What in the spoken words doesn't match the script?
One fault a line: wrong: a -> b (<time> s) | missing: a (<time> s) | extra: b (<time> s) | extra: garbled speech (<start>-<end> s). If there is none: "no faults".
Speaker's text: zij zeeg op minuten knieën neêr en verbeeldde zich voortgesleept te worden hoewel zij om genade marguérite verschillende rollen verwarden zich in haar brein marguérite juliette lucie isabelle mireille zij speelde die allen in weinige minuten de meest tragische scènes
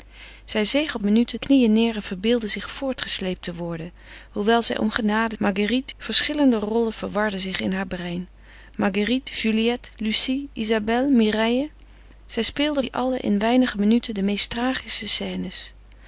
no faults